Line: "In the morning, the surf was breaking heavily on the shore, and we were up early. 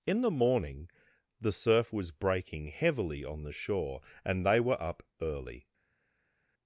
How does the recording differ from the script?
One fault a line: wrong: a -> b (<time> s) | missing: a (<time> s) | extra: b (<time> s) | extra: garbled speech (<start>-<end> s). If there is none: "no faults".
wrong: we -> they (4.5 s)